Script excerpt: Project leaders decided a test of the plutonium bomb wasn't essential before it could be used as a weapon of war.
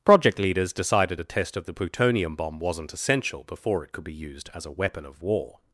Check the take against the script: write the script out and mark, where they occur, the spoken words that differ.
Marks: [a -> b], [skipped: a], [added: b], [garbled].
Project leaders decided a test of the plutonium bomb wasn't essential before it could be used as a weapon of war.